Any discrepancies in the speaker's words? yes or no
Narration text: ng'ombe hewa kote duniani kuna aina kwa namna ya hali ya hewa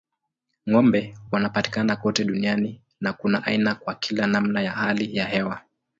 yes